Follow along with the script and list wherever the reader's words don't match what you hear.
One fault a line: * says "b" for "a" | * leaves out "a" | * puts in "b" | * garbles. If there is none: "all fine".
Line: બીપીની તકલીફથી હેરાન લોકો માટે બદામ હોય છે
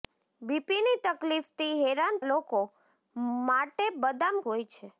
all fine